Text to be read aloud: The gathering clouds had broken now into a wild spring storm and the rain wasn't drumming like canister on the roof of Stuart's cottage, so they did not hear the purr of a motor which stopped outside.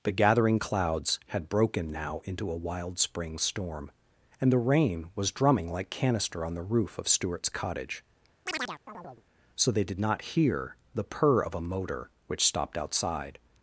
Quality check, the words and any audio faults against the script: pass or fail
fail